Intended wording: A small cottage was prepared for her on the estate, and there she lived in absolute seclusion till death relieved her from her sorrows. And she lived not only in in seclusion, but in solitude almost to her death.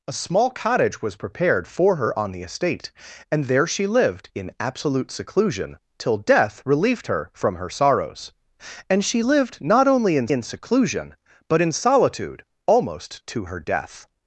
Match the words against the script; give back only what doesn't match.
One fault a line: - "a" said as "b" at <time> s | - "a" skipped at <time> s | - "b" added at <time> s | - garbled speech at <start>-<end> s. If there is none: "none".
none